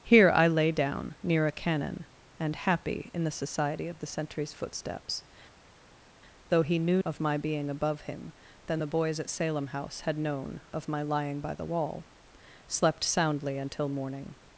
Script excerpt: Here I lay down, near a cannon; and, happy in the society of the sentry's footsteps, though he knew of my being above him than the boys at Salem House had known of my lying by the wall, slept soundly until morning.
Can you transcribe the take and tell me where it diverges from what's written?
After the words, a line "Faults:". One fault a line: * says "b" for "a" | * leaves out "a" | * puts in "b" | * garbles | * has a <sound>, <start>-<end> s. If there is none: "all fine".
Here I lay down, near a cannon; and, happy in the society of the sentry's footsteps, though he knew of my being above him than the boys at Salem House had known of my lying by the wall, slept soundly until morning.
Faults:
all fine